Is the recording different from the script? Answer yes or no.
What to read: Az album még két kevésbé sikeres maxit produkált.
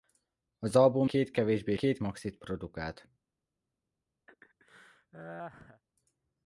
yes